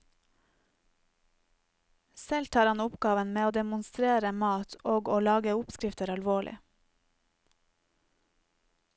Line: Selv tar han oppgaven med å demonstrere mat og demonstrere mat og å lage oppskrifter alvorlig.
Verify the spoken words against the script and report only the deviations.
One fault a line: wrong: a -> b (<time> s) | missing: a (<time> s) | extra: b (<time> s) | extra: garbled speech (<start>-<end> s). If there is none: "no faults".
missing: demonstrere mat og (5.1 s)